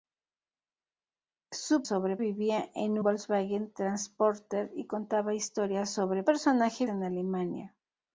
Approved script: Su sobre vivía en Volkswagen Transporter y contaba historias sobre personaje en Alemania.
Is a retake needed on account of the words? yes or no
no